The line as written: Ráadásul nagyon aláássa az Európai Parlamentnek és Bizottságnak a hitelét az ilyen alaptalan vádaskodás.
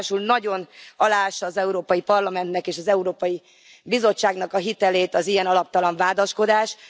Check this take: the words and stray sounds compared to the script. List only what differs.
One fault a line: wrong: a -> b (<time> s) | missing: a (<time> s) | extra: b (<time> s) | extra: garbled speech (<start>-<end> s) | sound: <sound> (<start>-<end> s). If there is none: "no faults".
extra: az Európai (2.8 s)